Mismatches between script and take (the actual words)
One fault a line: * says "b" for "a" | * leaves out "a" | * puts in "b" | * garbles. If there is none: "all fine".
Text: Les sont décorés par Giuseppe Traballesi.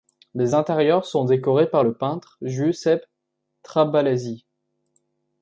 * puts in "intérieurs"
* puts in "le peintre"